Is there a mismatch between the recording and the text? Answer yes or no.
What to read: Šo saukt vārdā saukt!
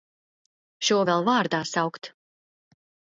yes